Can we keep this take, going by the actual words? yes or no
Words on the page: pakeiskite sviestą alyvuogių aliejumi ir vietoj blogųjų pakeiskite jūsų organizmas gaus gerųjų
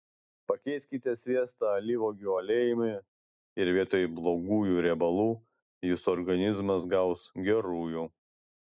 no